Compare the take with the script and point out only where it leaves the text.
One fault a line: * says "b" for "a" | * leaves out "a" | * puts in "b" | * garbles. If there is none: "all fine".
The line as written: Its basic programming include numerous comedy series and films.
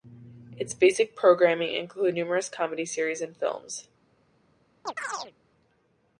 all fine